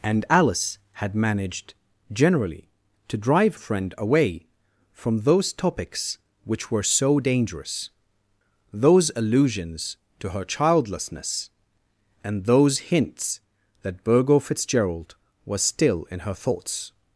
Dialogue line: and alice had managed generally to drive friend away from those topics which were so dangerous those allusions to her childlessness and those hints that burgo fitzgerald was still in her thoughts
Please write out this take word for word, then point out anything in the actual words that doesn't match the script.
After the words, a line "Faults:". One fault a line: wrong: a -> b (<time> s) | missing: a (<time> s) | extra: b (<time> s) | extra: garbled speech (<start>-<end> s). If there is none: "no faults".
and alice had managed generally to drive friend away from those topics which were so dangerous those allusions to her childlessness and those hints that burgo fitzgerald was still in her thoughts
Faults:
no faults